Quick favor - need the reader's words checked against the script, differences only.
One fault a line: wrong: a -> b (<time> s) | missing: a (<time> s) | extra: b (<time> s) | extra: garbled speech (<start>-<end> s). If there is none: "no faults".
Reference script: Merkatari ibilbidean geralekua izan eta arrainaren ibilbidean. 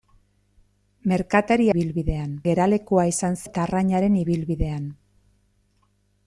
no faults